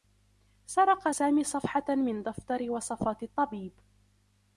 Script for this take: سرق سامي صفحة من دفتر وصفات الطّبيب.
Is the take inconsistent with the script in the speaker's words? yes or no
no